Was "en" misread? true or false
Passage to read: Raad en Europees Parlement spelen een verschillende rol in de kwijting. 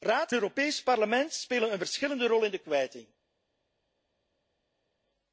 true